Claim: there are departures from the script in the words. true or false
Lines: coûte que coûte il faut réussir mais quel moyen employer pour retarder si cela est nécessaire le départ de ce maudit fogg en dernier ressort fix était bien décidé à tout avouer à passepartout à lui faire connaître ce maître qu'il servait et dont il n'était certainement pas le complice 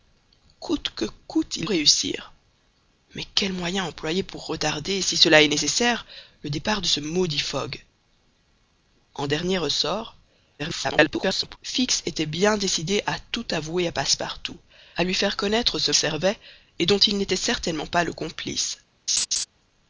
true